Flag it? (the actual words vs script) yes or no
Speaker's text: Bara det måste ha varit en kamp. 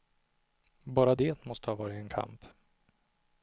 no